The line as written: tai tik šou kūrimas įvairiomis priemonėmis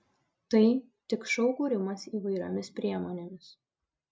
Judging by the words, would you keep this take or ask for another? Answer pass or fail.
pass